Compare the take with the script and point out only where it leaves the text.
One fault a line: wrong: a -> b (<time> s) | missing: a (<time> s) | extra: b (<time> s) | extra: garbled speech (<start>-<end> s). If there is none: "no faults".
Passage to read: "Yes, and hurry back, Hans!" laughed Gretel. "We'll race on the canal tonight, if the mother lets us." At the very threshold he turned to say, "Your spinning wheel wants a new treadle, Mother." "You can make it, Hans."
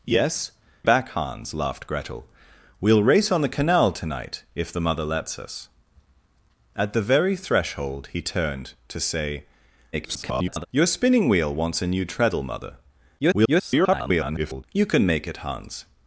missing: and hurry (0.5 s)
extra: garbled speech (9.9-10.7 s)
extra: garbled speech (13.2-14.6 s)